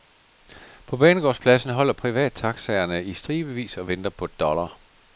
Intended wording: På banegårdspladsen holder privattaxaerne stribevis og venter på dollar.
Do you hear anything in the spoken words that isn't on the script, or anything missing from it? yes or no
yes